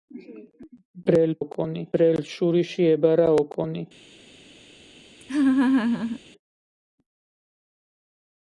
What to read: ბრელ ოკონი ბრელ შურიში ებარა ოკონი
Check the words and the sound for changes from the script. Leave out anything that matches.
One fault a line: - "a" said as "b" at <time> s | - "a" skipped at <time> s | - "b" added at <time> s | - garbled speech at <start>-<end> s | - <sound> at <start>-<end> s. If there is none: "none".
- laugh at 5.2-6.2 s